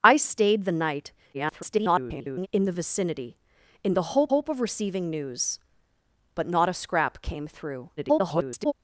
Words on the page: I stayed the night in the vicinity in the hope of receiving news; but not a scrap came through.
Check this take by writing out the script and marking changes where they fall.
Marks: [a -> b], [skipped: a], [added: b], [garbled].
I stayed the night [garbled] in the vicinity in the hope [added: hope] of receiving news; but not a scrap came through. [garbled]